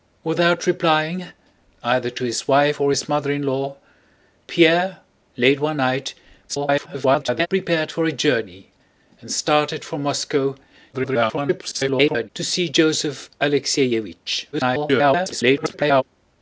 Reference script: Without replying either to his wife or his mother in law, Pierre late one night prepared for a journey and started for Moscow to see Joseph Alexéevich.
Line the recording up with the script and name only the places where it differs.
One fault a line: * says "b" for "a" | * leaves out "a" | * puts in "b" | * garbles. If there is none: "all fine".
* garbles
* garbles
* garbles